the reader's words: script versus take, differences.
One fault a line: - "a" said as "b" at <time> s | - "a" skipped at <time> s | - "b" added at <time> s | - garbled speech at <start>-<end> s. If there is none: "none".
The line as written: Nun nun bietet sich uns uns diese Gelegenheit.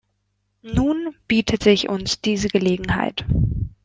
- "nun" skipped at 1.1 s
- "uns" skipped at 2.2 s